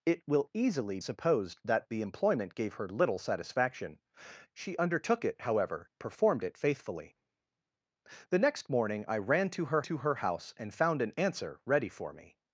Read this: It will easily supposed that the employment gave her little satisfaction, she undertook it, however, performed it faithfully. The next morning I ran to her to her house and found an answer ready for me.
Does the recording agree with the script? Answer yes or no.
yes